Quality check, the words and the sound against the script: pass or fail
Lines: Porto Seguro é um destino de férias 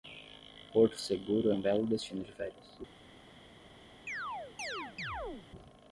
fail